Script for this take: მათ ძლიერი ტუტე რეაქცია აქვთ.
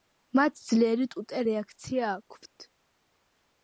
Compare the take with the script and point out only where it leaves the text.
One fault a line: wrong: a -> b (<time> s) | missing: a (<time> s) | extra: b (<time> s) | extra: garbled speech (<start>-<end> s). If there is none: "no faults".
no faults